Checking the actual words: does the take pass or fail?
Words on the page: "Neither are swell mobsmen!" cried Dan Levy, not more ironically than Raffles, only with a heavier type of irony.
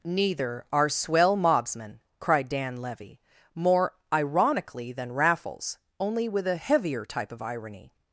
fail